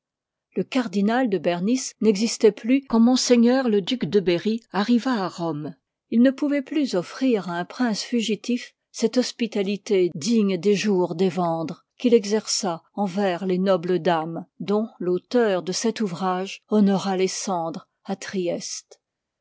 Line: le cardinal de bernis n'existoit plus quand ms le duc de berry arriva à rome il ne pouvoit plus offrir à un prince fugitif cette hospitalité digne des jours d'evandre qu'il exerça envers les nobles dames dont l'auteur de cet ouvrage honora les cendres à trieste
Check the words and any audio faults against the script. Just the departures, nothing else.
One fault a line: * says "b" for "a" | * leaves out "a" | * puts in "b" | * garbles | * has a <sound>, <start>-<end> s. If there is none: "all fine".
all fine